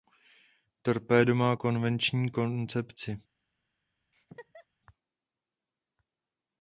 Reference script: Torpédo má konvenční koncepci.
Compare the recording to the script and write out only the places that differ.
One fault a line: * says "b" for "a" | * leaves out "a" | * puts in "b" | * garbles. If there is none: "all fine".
all fine